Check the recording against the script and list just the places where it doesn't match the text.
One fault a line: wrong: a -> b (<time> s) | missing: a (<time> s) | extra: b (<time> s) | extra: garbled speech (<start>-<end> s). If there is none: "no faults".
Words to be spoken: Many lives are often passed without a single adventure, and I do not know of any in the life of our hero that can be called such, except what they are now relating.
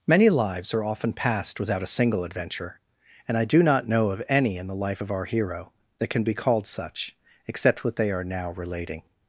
no faults